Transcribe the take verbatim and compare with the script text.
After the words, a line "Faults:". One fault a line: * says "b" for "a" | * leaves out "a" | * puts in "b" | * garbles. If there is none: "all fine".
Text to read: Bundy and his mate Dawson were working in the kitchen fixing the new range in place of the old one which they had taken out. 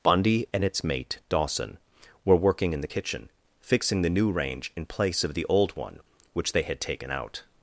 Bundy and its mate Dawson were working in the kitchen fixing the new range in place of the old one which they had taken out.
Faults:
* says "its" for "his"